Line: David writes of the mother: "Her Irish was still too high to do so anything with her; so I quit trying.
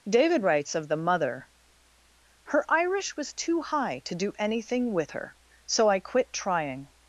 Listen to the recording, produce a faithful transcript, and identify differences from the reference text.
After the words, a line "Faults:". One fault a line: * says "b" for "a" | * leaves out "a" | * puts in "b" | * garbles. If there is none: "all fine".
David writes of the mother: "Her Irish was too high to do anything with her; so I quit trying.
Faults:
* leaves out "still"
* leaves out "so"